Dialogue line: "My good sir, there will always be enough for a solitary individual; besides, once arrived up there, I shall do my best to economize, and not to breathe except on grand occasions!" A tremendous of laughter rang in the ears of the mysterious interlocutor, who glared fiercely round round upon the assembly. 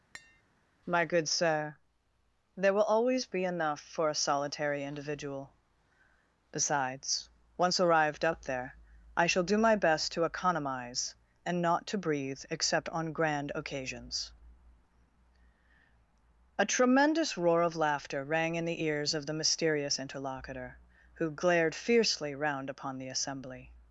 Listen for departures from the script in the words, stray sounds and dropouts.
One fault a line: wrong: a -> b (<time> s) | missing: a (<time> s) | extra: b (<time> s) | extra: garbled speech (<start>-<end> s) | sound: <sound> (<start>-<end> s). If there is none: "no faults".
sound: tap (0.1-0.4 s)
extra: roar (17.4 s)
missing: round (22.7 s)